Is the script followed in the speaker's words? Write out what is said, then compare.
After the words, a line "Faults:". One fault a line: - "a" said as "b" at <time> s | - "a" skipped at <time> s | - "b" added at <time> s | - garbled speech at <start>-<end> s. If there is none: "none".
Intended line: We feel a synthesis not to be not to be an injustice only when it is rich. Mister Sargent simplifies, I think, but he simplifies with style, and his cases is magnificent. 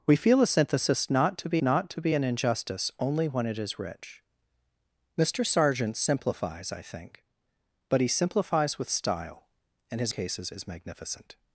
We feel a synthesis not to be not to be an injustice only when it is rich. Mister Sargent simplifies, I think, but he simplifies with style, and his cases is magnificent.
Faults:
none